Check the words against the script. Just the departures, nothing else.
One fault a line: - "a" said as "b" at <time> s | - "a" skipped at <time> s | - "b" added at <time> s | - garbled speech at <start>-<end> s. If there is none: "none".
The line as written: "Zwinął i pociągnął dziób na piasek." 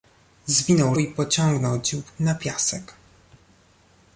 none